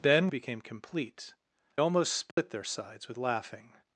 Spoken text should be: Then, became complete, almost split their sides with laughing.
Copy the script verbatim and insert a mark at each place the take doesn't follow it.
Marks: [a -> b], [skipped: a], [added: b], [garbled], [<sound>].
Then, became complete, almost split [dropout] their sides with laughing.